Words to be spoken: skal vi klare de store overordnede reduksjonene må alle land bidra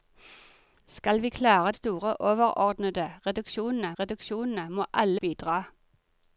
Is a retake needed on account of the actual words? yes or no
yes